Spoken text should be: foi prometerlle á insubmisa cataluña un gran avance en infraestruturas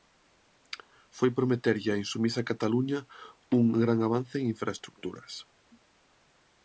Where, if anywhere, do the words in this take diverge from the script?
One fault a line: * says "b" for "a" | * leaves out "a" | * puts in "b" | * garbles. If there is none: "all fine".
all fine